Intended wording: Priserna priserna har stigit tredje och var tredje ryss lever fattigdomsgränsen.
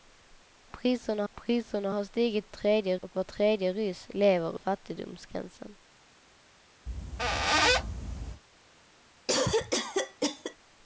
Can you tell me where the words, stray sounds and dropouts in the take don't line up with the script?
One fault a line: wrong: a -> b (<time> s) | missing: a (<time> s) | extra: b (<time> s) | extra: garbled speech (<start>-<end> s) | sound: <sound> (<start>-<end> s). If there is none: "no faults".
sound: squeak (6.9-8.4 s)
sound: cough (9.3-10.6 s)